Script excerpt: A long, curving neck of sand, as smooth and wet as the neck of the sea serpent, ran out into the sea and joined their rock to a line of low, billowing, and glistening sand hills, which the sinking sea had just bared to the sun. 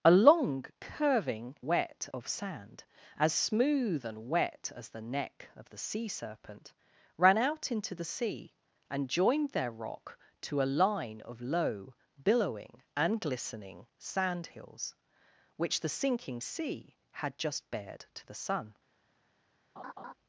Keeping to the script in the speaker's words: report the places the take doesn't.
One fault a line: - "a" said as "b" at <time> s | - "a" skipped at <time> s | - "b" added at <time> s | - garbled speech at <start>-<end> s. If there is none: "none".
- "neck" said as "wet" at 1.7 s